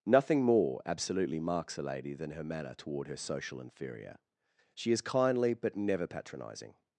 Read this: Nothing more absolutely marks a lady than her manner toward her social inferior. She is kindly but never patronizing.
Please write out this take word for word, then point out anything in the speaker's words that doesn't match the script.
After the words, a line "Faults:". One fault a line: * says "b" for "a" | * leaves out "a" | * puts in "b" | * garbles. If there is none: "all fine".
Nothing more absolutely marks a lady than her manner toward her social inferior. She is kindly but never patronizing.
Faults:
all fine